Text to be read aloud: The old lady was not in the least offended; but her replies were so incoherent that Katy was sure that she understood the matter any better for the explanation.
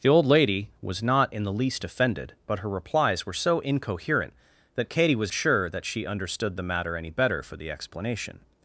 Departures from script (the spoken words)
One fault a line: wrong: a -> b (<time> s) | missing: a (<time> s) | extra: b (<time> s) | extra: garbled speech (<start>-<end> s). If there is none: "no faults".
no faults